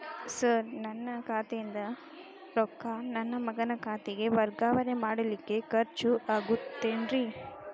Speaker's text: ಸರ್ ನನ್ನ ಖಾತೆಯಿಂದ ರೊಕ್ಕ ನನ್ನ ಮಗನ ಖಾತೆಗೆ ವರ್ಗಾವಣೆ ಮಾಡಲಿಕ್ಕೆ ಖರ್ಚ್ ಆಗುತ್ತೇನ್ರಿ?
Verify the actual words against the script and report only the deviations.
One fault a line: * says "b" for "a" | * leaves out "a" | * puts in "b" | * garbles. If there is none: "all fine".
all fine